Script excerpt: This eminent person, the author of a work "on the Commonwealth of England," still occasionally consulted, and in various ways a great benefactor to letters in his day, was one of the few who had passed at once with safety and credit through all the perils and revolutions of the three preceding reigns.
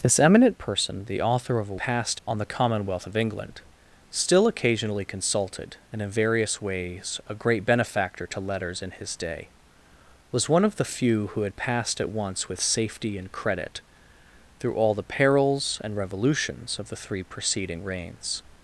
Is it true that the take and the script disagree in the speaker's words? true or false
true